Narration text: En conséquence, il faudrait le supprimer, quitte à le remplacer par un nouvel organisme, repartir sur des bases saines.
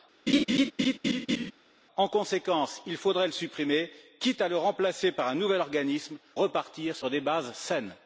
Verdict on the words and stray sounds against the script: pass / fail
fail